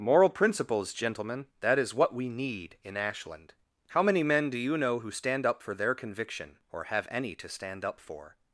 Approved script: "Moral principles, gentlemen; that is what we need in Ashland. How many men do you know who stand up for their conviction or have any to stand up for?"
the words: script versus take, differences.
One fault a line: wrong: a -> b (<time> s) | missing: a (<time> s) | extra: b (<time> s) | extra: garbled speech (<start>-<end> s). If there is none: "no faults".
no faults